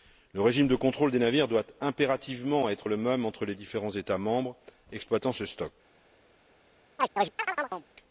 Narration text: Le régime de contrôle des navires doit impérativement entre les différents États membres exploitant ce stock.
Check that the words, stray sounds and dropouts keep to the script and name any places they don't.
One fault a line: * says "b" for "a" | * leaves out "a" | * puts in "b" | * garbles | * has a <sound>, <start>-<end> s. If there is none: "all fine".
* puts in "être le même"
* has a chirp, 7.0-7.9 s